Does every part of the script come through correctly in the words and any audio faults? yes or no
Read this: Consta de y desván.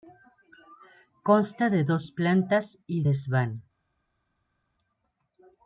no